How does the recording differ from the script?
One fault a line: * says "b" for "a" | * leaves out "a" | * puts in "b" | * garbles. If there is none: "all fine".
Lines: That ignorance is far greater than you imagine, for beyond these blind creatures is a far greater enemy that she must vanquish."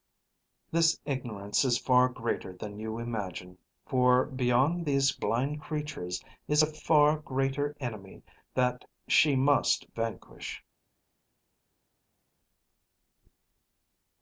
* says "This" for "That"